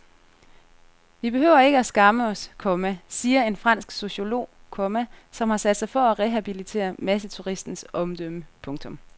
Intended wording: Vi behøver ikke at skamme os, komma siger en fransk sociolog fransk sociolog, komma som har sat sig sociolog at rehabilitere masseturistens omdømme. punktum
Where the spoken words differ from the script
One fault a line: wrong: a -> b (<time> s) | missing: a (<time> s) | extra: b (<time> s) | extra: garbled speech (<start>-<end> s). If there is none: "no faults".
missing: fransk sociolog (4.5 s)
wrong: sociolog -> for (5.9 s)